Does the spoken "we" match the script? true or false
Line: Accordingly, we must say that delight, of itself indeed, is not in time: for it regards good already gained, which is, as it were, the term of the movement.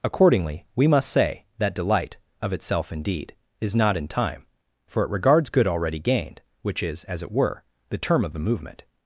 true